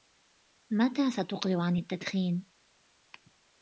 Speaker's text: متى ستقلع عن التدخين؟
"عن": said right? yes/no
yes